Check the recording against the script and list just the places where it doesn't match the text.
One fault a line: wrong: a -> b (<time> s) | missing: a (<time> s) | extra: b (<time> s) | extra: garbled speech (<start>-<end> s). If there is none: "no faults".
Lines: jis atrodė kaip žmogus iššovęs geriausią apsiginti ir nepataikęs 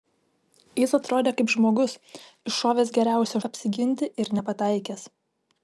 no faults